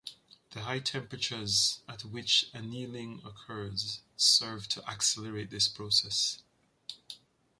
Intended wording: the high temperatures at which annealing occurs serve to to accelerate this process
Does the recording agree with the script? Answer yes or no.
no